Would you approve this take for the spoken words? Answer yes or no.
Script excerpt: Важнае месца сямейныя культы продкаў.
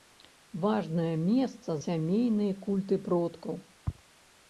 yes